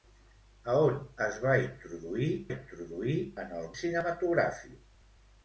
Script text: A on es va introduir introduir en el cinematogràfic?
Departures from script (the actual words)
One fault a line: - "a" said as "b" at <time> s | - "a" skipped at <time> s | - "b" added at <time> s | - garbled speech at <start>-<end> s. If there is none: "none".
none